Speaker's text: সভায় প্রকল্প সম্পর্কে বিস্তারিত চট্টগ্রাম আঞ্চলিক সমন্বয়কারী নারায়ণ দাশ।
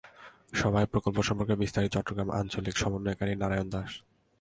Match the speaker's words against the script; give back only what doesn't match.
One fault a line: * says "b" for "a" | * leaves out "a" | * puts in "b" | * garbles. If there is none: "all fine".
all fine